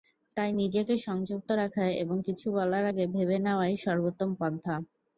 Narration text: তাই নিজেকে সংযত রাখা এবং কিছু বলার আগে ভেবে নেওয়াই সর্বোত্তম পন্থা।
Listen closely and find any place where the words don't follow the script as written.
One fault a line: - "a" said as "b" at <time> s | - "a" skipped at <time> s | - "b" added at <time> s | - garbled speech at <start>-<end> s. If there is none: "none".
none